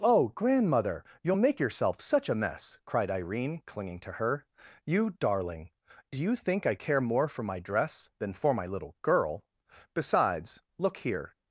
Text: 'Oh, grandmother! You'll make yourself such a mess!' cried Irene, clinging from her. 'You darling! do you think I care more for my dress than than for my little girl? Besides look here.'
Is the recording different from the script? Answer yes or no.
yes